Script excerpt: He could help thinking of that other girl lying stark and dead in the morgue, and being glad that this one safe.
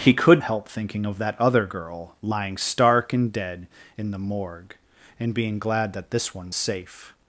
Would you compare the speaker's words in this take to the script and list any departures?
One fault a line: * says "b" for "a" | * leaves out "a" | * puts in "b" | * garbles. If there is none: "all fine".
all fine